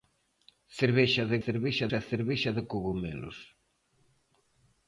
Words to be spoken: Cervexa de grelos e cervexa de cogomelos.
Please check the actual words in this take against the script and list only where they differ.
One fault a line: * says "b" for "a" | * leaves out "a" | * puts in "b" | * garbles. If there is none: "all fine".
* says "cervexa" for "grelos"